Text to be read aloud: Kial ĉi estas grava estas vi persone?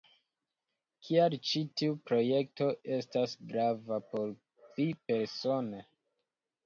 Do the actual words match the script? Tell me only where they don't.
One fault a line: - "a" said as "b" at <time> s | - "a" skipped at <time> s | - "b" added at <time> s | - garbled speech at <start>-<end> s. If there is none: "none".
- "tiu projekto" added at 1.8 s
- "estas" said as "por" at 4.2 s